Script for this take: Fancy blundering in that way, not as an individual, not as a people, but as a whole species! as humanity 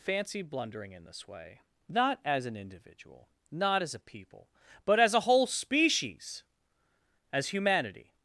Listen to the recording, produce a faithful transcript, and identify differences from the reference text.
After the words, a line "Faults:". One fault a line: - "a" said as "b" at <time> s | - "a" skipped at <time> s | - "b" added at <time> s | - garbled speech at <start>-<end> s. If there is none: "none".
Fancy blundering in this way, not as an individual, not as a people, but as a whole species! as humanity
Faults:
- "that" said as "this" at 1.0 s